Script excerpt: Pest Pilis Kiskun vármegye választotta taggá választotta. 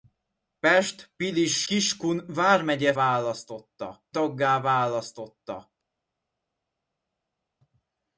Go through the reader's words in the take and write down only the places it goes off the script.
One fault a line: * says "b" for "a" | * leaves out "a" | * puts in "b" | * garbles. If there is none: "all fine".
all fine